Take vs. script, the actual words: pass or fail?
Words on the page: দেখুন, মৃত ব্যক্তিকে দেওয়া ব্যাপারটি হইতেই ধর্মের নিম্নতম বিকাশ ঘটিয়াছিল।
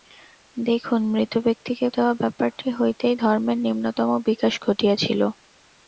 pass